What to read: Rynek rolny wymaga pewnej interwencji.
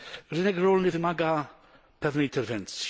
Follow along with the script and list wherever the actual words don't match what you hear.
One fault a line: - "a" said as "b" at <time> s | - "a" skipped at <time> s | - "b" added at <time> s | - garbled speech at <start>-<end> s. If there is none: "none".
none